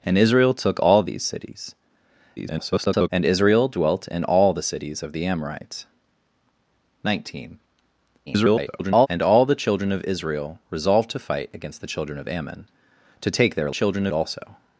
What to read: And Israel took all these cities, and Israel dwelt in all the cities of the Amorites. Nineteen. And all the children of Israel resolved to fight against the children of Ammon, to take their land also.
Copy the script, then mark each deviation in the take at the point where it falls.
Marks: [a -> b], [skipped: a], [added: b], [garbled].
And Israel took all these cities, [garbled] and Israel dwelt in all the cities of the Amorites. Nineteen. [garbled] And all the children of Israel resolved to fight against the children of Ammon, to take their [land -> children] also.